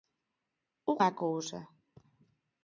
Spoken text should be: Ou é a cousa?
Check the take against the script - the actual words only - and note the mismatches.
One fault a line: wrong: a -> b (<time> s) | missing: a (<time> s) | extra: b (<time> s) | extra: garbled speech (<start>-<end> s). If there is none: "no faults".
no faults